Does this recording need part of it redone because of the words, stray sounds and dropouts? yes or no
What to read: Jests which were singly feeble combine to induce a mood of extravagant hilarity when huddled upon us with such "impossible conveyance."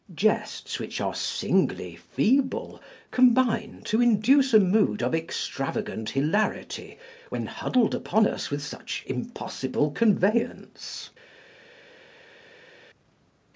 yes